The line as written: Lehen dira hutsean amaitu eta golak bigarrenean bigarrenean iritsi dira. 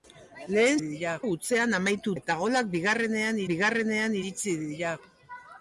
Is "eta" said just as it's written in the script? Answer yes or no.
yes